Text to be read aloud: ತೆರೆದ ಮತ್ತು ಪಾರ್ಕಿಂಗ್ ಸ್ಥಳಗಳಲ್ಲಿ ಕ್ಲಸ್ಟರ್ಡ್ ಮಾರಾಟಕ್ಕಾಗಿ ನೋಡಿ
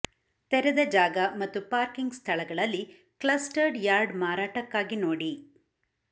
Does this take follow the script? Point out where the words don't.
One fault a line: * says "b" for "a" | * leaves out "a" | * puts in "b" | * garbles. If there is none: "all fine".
* puts in "ಜಾಗ"
* puts in "ಯಾರ್ಡ್"